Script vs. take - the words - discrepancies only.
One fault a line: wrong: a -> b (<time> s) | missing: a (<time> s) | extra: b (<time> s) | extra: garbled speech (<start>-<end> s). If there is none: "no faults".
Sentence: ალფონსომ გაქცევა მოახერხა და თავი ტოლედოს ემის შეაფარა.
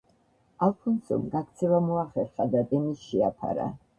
missing: თავი ტოლედოს (2.6 s)